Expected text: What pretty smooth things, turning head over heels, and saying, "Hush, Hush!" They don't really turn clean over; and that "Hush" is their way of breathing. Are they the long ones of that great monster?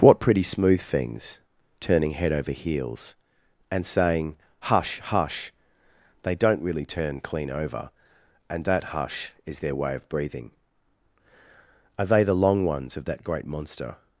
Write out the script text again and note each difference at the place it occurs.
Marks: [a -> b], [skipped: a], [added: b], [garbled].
What pretty smooth things, turning head over heels, and saying, "Hush, Hush!" They don't really turn clean over; and that "Hush" is their way of breathing. Are they the long ones of that great monster?